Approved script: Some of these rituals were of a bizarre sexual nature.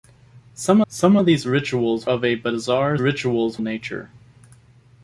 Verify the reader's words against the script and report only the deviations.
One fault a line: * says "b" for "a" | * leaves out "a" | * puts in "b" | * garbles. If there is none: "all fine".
* puts in "some"
* leaves out "were"
* says "rituals" for "sexual"